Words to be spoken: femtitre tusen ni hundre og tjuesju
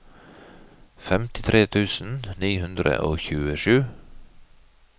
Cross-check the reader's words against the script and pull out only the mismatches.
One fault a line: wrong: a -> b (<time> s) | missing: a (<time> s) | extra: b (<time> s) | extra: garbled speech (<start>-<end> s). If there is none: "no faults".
no faults